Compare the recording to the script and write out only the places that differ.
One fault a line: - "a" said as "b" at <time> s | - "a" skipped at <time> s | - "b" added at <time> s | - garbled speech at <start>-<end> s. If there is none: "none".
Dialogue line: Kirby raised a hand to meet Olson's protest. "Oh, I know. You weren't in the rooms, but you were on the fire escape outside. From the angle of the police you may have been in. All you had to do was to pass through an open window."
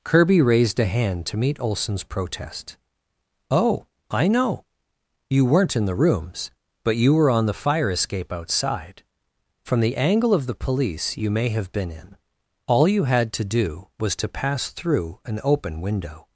none